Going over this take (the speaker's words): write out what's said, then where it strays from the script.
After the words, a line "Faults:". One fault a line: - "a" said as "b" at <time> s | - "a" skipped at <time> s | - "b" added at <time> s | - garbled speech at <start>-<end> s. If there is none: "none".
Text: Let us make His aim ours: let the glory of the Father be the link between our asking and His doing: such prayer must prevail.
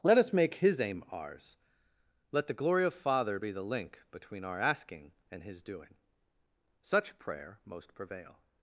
Let us make His aim ours: let the glory of Father be the link between our asking and His doing: such prayer most prevail.
Faults:
- "the" skipped at 2.9 s
- "must" said as "most" at 7.6 s